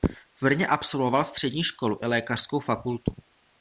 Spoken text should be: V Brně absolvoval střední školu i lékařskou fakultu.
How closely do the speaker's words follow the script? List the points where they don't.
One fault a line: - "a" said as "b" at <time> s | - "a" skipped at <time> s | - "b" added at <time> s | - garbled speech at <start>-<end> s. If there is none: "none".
none